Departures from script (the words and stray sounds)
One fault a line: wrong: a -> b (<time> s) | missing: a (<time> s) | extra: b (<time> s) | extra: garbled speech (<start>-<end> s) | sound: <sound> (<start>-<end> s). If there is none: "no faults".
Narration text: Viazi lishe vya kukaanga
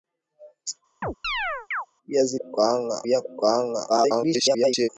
sound: chirp (1.0-1.9 s)
wrong: lishe -> kukaanga (2.4 s)
extra: garbled speech (3.9-4.9 s)